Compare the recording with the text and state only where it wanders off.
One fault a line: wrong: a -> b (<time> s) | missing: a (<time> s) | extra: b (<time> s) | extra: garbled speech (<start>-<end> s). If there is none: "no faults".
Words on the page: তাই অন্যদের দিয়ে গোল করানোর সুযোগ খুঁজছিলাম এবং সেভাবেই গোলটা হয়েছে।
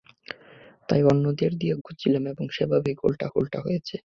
missing: গোল করানোর সুযোগ (1.8 s)
extra: গোলটা (3.3 s)